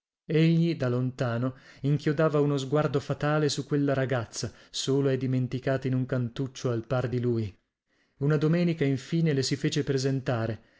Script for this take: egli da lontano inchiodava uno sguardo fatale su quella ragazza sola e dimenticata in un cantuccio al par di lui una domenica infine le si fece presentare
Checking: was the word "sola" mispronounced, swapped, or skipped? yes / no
no